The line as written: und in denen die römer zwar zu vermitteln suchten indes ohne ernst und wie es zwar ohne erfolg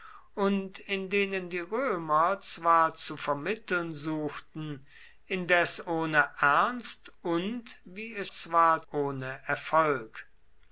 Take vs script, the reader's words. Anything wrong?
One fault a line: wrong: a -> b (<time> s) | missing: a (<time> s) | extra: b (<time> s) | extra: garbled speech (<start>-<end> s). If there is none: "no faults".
no faults